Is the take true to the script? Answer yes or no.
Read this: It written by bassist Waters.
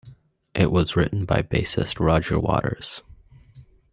no